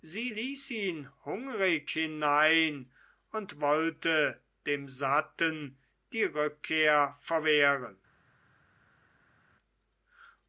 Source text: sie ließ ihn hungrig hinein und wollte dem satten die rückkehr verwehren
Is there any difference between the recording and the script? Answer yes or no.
no